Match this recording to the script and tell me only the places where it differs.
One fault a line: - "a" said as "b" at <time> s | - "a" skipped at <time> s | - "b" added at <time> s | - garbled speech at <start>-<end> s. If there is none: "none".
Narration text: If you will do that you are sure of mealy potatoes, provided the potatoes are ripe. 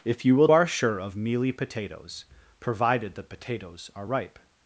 - "do that you" skipped at 0.5 s